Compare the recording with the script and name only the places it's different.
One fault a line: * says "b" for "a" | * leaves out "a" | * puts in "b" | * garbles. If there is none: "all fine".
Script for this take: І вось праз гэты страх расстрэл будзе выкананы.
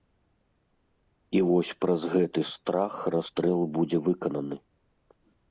all fine